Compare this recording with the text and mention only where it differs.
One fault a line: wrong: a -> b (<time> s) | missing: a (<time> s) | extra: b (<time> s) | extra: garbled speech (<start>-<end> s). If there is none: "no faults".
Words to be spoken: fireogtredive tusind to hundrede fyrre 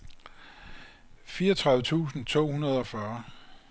extra: og (2.8 s)